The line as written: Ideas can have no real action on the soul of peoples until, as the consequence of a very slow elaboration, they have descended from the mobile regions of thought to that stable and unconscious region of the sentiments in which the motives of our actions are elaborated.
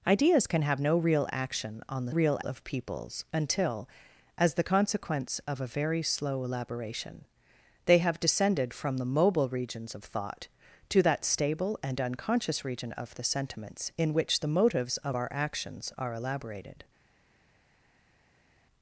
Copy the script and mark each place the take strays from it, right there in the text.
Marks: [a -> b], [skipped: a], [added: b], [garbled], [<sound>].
Ideas can have no real action on the [soul -> real] of peoples until, as the consequence of a very slow elaboration, they have descended from the mobile regions of thought to that stable and unconscious region of the sentiments in which the motives of our actions are elaborated.